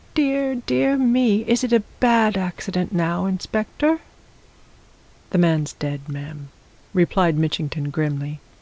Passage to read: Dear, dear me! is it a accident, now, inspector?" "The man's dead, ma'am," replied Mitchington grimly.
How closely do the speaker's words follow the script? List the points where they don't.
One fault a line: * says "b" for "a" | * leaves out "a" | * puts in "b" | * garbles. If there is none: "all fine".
* puts in "bad"